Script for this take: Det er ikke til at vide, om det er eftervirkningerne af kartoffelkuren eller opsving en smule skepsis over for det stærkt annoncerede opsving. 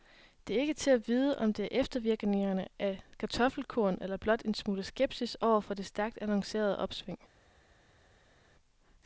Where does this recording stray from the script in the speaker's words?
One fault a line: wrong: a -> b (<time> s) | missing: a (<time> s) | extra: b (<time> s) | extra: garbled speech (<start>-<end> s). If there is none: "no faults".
wrong: opsving -> blot (4.2 s)